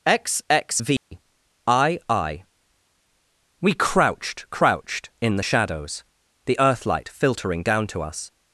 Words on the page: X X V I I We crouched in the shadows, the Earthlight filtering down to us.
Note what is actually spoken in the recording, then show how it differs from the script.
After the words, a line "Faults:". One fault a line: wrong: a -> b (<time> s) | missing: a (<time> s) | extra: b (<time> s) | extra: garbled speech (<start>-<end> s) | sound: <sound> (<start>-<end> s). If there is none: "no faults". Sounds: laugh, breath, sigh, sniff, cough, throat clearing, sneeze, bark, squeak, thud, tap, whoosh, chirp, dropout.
X X V I I We crouched crouched in the shadows, the Earthlight filtering down to us.
Faults:
sound: dropout (1.0-1.1 s)
extra: crouched (4.5 s)